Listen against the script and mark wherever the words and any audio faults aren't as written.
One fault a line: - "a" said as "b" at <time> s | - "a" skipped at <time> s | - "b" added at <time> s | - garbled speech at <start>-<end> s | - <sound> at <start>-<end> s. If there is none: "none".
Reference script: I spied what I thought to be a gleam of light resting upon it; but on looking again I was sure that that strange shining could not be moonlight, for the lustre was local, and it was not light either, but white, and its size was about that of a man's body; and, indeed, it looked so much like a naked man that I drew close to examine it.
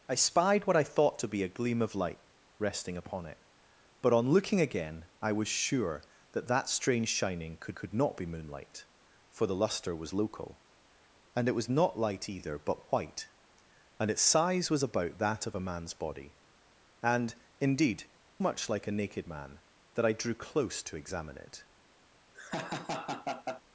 - "could" added at 7.7 s
- "it looked so" skipped at 18.1 s
- laugh at 22.3-23.6 s